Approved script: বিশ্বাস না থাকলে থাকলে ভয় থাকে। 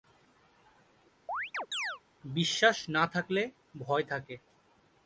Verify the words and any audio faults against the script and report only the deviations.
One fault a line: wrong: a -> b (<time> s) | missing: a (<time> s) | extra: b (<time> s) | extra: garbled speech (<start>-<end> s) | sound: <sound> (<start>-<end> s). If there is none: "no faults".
sound: chirp (1.3-2.0 s)
missing: থাকলে (3.4 s)